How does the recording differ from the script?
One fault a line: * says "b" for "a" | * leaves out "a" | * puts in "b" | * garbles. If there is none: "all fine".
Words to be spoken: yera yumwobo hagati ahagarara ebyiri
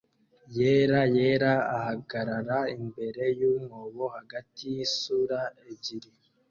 * puts in "yera ahagarara imbere"
* says "yisura" for "ahagarara"